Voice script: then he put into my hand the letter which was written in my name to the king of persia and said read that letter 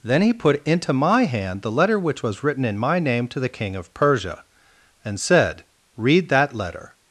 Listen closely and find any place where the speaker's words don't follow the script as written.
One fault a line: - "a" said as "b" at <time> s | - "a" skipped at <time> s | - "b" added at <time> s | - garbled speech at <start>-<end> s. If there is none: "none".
none